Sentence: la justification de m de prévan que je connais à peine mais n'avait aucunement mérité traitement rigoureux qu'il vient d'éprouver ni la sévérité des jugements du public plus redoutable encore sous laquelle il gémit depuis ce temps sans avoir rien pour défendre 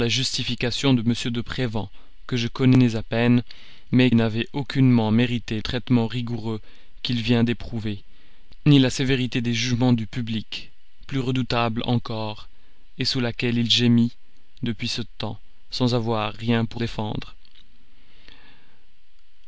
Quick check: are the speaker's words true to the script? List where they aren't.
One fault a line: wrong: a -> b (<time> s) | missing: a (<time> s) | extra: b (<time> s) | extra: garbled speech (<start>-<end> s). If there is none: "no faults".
no faults